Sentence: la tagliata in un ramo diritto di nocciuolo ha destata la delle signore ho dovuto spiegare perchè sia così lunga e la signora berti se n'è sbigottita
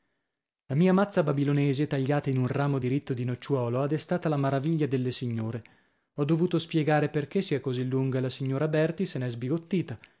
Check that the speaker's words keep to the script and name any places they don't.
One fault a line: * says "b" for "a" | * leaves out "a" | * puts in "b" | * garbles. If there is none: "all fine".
* puts in "mia mazza babilonese"
* puts in "maraviglia"